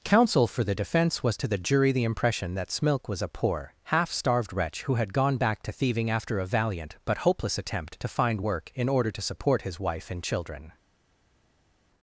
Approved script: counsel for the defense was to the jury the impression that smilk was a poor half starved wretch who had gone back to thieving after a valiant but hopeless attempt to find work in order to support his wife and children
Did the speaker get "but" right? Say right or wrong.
right